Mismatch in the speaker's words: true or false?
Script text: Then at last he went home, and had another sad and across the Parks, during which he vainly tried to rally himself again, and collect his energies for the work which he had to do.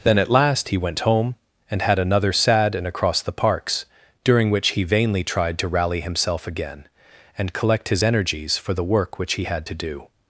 false